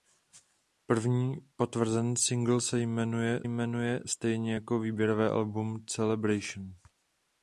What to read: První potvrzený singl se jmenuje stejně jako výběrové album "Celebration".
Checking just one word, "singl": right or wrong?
right